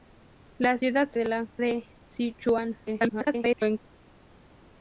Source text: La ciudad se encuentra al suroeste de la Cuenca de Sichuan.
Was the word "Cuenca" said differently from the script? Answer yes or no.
yes